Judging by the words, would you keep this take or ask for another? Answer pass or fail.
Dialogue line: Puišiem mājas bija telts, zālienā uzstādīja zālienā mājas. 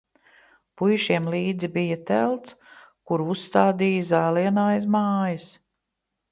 fail